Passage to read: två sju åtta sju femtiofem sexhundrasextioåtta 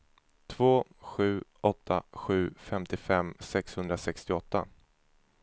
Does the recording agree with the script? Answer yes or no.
yes